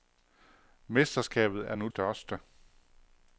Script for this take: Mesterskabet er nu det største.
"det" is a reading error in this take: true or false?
true